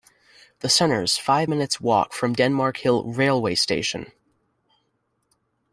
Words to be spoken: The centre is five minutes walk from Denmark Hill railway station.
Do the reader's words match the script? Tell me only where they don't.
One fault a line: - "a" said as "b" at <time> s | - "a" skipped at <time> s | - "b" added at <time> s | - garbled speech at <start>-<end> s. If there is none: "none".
none